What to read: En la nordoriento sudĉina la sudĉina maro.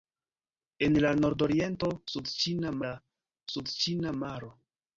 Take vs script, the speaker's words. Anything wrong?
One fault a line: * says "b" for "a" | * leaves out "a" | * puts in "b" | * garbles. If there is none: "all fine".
all fine